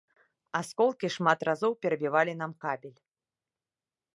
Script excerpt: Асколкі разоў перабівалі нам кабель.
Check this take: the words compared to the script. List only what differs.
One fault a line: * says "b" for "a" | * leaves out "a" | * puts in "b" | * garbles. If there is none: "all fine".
* puts in "шмат"